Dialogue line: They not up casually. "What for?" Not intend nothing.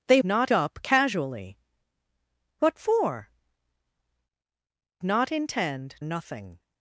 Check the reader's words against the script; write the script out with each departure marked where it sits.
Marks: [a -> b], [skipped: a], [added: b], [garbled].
They not up casually. "What for?" Not intend nothing.